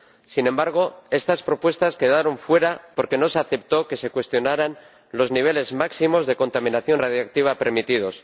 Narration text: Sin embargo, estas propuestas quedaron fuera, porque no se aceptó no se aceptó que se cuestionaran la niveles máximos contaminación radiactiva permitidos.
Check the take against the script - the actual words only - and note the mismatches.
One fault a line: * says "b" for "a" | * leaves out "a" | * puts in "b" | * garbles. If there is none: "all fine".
* leaves out "no se aceptó"
* says "los" for "la"
* puts in "de"